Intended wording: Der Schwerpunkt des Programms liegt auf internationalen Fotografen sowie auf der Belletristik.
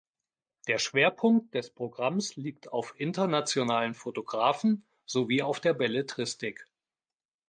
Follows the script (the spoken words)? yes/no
yes